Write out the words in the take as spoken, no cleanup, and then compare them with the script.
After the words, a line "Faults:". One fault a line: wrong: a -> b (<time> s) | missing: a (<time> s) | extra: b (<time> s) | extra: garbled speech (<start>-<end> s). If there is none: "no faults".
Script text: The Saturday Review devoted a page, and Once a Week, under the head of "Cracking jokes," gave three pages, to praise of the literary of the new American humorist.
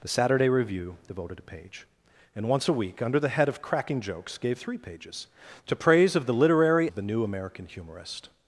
The Saturday Review devoted a page, and Once a Week, under the head of "Cracking jokes," gave three pages, to praise of the literary of the new American humorist.
Faults:
no faults